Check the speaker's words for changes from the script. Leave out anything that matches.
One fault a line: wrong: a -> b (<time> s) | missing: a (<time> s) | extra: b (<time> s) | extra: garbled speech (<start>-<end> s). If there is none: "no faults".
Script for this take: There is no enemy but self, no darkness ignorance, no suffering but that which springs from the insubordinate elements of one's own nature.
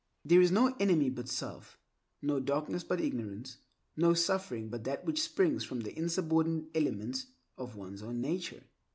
extra: but (2.8 s)